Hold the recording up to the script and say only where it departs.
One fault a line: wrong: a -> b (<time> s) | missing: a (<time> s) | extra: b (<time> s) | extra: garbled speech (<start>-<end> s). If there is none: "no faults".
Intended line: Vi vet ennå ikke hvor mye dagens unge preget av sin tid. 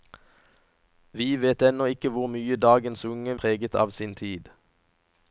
no faults